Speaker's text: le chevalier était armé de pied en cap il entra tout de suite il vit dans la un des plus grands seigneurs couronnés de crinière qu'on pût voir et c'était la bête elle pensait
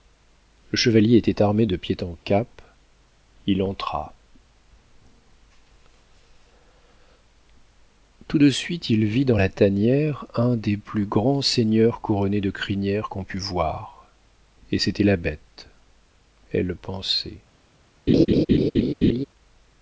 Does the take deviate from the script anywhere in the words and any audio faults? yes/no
yes